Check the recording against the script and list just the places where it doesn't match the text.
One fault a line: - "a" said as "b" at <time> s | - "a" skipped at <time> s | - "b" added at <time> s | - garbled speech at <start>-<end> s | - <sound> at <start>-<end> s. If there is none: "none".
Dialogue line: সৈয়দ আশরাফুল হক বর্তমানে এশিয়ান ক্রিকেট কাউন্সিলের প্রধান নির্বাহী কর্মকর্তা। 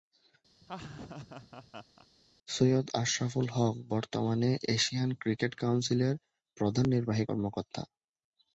- laugh at 0.6-2.1 s